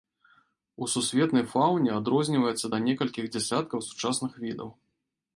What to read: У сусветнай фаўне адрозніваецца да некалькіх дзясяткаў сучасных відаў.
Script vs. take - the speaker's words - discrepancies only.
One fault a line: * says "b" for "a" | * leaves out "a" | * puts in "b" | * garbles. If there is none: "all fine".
all fine